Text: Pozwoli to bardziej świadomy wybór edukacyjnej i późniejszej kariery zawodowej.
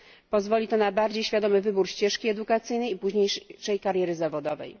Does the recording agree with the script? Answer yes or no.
no